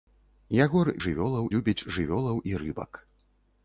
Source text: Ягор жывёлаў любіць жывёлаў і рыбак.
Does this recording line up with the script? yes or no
yes